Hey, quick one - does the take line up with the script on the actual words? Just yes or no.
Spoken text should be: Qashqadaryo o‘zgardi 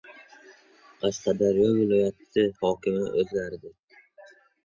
no